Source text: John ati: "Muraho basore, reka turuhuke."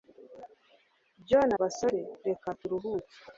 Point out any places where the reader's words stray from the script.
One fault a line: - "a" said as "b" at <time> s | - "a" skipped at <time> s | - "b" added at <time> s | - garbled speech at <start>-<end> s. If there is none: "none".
- "ati Muraho" skipped at 1.5 s